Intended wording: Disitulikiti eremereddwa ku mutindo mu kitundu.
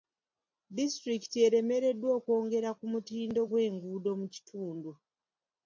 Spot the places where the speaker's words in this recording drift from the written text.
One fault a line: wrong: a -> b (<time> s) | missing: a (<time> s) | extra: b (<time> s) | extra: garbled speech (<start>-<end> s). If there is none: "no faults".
extra: okwongera (2.2 s)
extra: gw'enguudo (3.5 s)